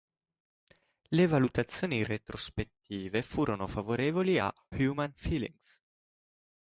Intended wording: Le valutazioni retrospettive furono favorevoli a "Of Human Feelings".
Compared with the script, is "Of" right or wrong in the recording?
wrong